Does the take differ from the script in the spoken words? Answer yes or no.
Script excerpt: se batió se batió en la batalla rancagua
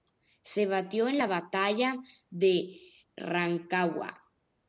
yes